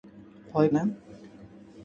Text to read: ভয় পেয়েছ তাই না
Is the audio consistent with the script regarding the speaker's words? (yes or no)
no